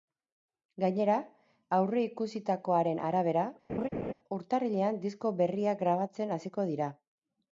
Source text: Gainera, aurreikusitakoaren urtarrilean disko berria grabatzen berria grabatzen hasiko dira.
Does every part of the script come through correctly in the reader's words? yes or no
no